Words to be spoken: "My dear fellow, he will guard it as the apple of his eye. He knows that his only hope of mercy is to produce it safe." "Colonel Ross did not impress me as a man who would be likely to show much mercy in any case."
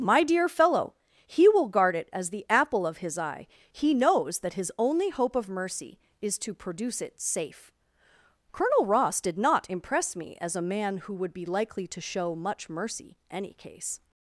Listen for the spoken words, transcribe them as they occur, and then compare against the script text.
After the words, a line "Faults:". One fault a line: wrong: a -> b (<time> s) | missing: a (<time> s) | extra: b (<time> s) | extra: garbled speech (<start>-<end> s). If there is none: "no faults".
"My dear fellow, he will guard it as the apple of his eye. He knows that his only hope of mercy is to produce it safe." "Colonel Ross did not impress me as a man who would be likely to show much mercy any case."
Faults:
missing: in (13.2 s)